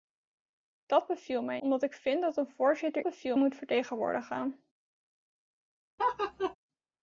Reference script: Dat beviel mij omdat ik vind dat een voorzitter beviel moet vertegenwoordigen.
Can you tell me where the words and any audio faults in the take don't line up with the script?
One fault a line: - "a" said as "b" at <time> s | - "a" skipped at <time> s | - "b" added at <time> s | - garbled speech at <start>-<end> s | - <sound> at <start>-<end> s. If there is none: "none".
- laugh at 6.0-6.6 s